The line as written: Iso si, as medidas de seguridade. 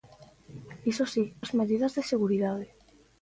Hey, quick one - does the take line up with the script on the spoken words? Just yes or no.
yes